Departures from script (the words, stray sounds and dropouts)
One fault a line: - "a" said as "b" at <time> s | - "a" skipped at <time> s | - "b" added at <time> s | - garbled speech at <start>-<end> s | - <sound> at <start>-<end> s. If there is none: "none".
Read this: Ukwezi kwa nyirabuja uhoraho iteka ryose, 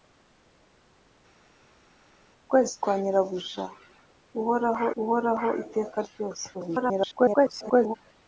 - "uhoraho" added at 5.0 s
- garbled speech at 6.5-7.9 s